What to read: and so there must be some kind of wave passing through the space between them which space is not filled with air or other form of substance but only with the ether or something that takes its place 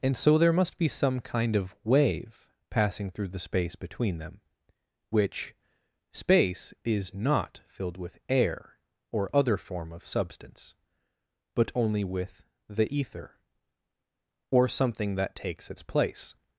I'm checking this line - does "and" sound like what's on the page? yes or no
yes